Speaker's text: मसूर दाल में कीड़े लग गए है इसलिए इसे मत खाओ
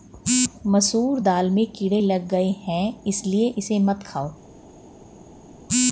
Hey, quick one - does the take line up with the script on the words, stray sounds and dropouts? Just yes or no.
yes